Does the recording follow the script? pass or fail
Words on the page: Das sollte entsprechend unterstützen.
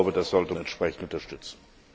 pass